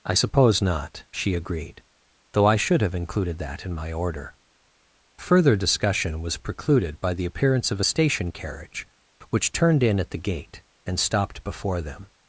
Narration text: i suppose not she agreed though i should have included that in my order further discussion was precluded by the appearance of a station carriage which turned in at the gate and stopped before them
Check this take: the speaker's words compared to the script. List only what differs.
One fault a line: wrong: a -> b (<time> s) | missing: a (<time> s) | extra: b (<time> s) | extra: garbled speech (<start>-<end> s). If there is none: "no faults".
no faults